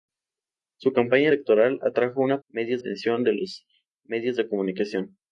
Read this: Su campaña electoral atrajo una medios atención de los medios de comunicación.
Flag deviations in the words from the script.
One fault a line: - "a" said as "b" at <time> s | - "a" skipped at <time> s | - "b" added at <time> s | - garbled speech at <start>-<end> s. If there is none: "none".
none